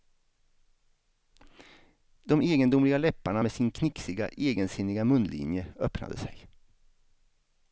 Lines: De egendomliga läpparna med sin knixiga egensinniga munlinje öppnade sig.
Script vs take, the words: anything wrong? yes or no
no